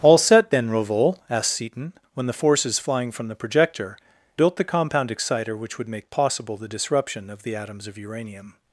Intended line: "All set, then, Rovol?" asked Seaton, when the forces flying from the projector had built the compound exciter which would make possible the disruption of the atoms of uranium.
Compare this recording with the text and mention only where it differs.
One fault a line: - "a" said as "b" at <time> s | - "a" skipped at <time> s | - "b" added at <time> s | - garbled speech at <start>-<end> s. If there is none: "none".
- "had" skipped at 4.0 s